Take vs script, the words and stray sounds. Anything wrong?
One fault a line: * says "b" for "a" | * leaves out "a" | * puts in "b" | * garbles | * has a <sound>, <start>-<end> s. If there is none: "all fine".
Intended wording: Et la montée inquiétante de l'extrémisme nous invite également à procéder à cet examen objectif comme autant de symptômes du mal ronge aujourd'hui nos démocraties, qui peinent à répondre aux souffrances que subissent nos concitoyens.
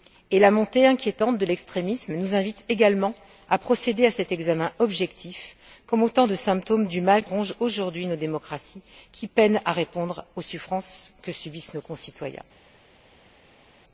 all fine